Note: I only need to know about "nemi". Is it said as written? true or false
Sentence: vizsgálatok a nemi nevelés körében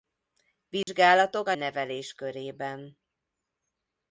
false